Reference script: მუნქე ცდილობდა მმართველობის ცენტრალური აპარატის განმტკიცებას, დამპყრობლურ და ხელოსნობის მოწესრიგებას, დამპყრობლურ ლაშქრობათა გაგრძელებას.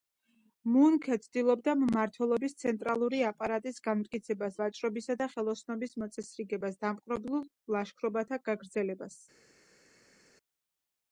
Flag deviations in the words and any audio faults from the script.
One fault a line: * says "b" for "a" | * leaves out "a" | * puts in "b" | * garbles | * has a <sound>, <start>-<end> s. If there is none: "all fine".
* says "ვაჭრობისა" for "დამპყრობლურ"